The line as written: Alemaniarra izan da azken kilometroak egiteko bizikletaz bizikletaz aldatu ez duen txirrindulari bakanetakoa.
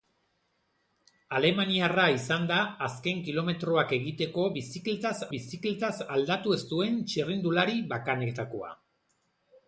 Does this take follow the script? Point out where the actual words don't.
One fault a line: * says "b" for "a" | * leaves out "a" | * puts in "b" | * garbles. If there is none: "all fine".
all fine